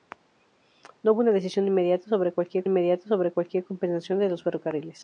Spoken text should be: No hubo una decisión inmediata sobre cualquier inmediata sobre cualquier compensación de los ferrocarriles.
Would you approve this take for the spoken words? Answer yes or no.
yes